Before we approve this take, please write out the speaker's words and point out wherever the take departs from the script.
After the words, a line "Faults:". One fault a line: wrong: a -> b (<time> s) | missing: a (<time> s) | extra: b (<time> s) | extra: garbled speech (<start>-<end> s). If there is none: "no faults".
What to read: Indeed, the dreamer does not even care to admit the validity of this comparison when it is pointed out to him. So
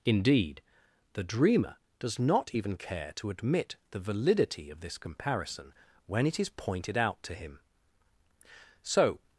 Indeed, the dreamer does not even care to admit the validity of this comparison when it is pointed out to him. So
Faults:
no faults